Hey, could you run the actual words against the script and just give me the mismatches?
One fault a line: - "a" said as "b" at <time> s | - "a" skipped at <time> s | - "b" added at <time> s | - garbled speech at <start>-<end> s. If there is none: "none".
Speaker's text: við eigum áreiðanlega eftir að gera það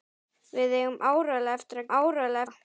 - "gera" said as "áreiðanlega" at 2.0 s